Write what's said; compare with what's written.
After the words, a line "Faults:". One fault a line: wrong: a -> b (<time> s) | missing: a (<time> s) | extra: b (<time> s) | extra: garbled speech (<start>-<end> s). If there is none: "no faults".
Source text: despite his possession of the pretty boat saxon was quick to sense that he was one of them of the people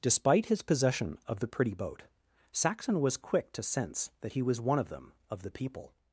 despite his possession of the pretty boat saxon was quick to sense that he was one of them of the people
Faults:
no faults